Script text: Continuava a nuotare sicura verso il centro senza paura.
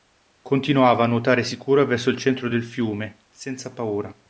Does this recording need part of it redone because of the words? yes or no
yes